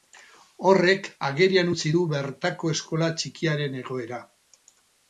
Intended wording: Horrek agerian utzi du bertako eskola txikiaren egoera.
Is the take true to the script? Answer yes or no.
yes